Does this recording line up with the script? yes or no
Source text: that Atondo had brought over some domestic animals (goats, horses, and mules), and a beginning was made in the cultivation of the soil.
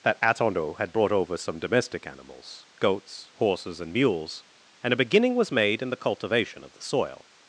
yes